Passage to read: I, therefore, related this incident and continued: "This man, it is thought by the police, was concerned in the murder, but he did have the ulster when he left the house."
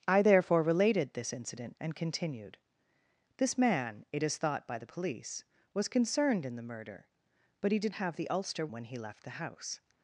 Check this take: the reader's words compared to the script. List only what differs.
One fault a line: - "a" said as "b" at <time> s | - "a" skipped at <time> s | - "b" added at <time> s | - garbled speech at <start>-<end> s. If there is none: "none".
none